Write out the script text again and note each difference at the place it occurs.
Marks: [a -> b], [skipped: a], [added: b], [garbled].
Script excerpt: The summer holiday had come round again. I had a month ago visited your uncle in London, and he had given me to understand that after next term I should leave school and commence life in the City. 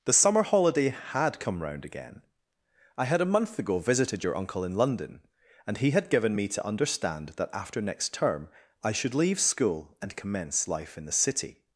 The summer holiday had come round again. I had a month ago visited your uncle in London, and he had given me to understand that after next term I should leave school and commence life in the City.